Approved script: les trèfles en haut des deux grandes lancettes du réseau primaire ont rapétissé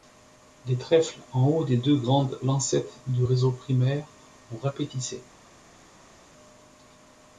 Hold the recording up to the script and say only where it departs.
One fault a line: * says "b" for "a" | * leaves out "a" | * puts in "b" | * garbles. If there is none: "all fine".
all fine